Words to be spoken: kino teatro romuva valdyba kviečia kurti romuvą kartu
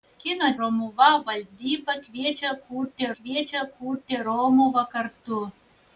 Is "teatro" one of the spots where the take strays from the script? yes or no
yes